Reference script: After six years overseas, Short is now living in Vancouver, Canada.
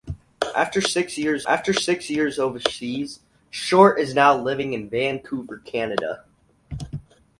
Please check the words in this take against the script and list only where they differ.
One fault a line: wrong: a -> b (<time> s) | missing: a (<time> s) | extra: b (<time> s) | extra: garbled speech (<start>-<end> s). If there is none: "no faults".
extra: after six years (1.5 s)